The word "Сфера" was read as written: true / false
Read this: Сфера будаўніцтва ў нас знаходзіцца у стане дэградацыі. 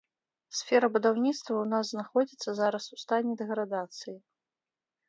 true